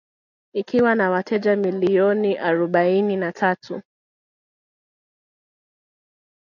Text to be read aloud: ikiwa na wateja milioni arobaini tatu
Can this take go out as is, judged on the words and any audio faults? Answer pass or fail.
fail